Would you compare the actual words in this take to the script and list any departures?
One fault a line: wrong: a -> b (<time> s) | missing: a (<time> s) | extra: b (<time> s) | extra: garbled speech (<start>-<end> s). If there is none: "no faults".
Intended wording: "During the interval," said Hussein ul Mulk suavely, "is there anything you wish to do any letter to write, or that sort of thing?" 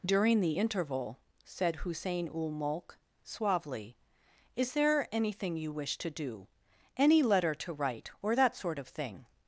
no faults